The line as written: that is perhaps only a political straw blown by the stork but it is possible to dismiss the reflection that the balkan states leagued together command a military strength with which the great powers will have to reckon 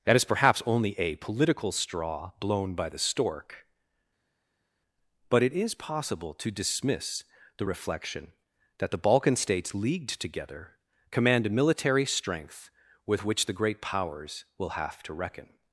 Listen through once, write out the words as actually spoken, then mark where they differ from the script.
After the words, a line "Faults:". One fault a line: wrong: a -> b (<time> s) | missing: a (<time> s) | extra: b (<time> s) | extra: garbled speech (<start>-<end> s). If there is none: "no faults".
that is perhaps only a political straw blown by the stork but it is possible to dismiss the reflection that the balkan states leagued together command a military strength with which the great powers will have to reckon
Faults:
no faults